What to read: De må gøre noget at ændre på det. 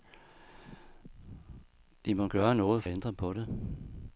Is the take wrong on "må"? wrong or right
right